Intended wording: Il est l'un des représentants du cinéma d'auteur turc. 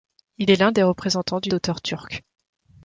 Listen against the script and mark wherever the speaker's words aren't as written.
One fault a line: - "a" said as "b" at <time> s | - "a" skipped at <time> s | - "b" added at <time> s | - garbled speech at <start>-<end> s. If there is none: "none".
- "cinéma" skipped at 1.5 s